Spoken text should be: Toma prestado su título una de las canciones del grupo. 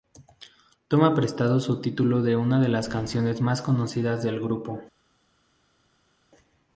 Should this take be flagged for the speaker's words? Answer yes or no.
yes